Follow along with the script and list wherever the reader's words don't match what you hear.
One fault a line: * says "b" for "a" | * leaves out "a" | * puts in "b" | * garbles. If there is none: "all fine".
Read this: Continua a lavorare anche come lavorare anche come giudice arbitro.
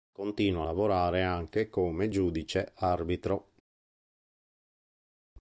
* leaves out "lavorare anche come"